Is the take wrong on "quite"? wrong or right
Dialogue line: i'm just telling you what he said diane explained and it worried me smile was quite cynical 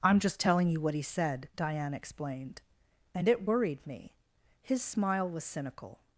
wrong